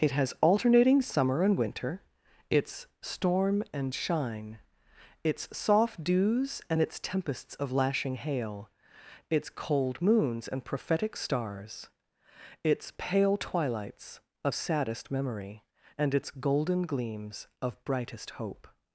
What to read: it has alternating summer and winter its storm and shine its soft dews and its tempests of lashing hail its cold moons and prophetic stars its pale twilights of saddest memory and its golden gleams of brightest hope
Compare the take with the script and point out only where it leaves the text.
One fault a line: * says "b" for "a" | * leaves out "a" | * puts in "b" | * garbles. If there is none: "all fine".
all fine